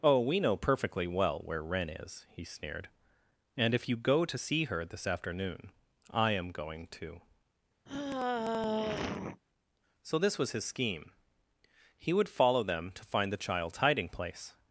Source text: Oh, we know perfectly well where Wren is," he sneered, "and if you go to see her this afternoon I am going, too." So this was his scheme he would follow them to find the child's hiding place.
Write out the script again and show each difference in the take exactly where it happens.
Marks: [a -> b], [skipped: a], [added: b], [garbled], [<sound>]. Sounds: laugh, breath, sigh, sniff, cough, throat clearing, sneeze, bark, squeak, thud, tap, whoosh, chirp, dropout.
Oh, we know perfectly well where Wren is," he sneered, "and if you go to see her this afternoon I am going, too." [sigh] So this was his scheme he would follow them to find the child's hiding place.